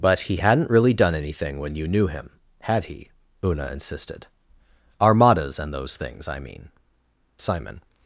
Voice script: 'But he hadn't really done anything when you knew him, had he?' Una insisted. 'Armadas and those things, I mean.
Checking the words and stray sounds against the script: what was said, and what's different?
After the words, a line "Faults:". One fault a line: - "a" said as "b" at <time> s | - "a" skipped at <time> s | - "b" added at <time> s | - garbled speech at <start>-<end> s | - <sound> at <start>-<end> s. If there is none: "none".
'But he hadn't really done anything when you knew him, had he?' Una insisted. 'Armadas and those things, I mean. Simon
Faults:
- "Simon" added at 7.4 s